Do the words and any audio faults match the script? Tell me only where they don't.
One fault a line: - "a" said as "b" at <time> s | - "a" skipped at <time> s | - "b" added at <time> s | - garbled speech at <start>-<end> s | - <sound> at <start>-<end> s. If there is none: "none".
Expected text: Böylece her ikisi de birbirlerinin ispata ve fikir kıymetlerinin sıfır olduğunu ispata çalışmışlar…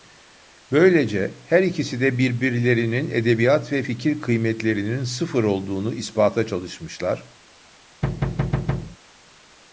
- "ispata" said as "edebiyat" at 3.1 s
- thud at 8.0-9.0 s